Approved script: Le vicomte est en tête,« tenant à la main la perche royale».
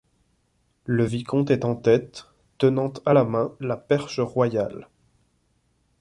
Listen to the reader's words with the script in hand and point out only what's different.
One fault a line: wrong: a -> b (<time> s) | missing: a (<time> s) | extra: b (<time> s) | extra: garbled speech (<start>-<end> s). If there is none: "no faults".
no faults